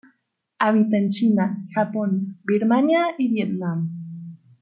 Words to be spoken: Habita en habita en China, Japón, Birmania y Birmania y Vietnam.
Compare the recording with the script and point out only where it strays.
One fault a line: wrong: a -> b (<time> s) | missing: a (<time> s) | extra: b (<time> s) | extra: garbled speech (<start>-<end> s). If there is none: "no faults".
missing: habita en (1.1 s)
missing: Birmania y (3.3 s)